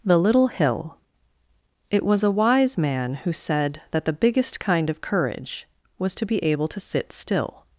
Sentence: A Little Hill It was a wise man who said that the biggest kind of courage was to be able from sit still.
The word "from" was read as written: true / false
false